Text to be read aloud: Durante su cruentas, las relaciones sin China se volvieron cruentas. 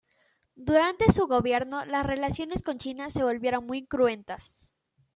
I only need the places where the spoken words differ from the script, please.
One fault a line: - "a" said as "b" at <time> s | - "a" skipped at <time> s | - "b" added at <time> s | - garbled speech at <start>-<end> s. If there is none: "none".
- "cruentas" said as "gobierno" at 1.3 s
- "sin" said as "con" at 2.6 s
- "muy" added at 3.7 s